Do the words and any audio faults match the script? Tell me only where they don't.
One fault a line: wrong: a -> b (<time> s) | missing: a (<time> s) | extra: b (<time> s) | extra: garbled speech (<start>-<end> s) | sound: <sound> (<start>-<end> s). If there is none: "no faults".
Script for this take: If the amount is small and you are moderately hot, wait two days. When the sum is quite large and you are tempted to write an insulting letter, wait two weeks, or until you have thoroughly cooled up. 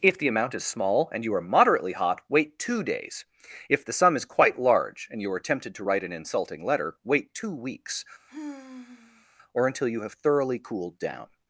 wrong: When -> If (3.7 s)
sound: sigh (8.3-9.3 s)
wrong: up -> down (11.0 s)